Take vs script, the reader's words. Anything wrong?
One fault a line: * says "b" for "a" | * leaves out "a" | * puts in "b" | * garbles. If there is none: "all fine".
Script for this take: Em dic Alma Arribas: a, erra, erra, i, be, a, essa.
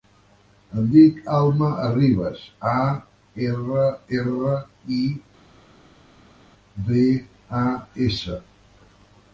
all fine